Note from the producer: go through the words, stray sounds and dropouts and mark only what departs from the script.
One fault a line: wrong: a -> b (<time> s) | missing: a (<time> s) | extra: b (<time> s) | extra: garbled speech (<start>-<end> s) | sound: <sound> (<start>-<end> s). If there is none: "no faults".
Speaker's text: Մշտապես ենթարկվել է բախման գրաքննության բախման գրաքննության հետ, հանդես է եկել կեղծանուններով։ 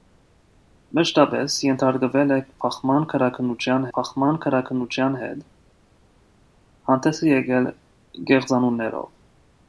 no faults